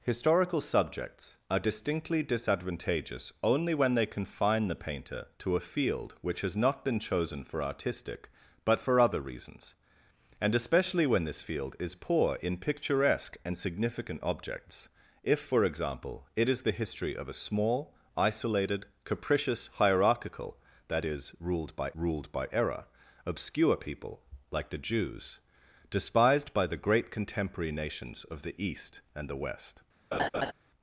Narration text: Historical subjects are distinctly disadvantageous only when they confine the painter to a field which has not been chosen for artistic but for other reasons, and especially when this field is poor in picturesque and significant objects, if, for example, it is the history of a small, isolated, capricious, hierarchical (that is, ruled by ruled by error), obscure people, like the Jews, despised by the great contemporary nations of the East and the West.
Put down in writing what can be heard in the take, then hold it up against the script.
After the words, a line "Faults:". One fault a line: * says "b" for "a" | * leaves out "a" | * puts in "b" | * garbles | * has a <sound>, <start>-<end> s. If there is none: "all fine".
Historical subjects are distinctly disadvantageous only when they confine the painter to a field which has not been chosen for artistic but for other reasons, and especially when this field is poor in picturesque and significant objects, if, for example, it is the history of a small, isolated, capricious, hierarchical (that is, ruled by ruled by error), obscure people, like the Jews, despised by the great contemporary nations of the East and the West.
Faults:
* has a laugh, 30.1-30.5 s